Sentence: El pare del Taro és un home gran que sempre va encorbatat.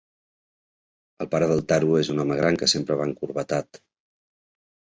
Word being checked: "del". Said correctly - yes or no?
yes